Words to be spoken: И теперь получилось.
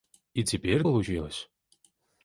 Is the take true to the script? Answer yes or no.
yes